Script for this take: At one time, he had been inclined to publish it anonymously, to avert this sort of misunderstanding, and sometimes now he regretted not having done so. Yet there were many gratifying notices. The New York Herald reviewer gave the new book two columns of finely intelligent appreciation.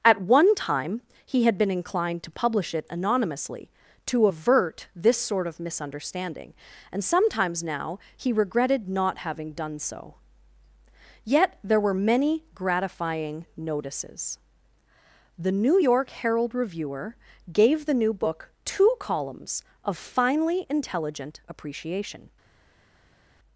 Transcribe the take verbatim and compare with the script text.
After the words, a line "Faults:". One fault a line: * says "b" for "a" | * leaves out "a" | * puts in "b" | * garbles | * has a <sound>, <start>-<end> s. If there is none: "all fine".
At one time, he had been inclined to publish it anonymously, to avert this sort of misunderstanding, and sometimes now he regretted not having done so. Yet there were many gratifying notices. The New York Herald reviewer gave the new book two columns of finely intelligent appreciation.
Faults:
all fine